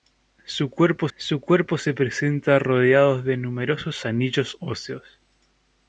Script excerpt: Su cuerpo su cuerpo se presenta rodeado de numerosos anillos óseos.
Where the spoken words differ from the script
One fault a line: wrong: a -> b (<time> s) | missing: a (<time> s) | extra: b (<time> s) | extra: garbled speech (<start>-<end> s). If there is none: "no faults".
no faults